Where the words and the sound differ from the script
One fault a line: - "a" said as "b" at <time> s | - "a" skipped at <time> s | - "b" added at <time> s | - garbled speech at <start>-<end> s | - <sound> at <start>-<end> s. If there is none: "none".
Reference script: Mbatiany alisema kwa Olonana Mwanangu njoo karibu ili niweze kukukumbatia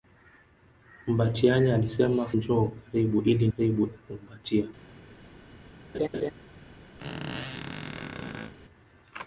- "kwa Olonana Mwanangu" skipped at 2.2 s
- "niweze" said as "karibu" at 3.6 s
- laugh at 5.9-6.3 s
- squeak at 7.0-8.5 s